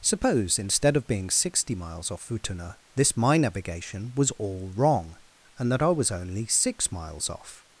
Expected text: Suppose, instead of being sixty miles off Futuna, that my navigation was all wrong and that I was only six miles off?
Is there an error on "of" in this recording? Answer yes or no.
no